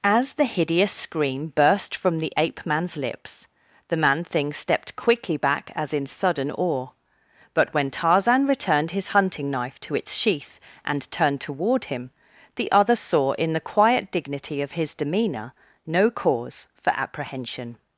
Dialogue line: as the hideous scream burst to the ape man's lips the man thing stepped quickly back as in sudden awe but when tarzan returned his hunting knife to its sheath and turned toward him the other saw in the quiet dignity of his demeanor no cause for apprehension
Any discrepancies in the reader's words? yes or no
yes